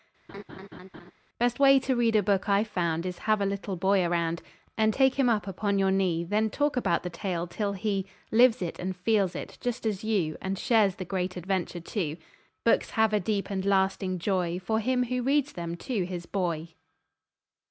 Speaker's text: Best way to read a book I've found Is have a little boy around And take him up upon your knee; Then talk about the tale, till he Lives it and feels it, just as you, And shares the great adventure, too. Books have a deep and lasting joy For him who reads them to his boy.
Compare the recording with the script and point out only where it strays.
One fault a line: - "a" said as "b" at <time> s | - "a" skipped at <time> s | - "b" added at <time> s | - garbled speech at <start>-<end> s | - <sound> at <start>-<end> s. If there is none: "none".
- laugh at 0.3-1.1 s